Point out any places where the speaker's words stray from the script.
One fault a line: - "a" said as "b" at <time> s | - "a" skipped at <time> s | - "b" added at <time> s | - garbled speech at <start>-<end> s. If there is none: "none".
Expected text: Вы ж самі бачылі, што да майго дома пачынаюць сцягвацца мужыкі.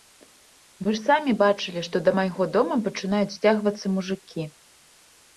none